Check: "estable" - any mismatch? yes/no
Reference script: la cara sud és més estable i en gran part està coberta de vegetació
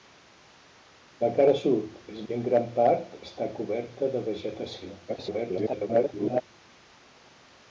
yes